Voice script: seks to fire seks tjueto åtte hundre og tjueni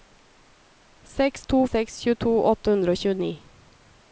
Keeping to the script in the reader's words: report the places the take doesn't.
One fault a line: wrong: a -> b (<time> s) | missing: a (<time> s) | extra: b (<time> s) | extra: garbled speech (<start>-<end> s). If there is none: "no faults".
missing: fire (1.6 s)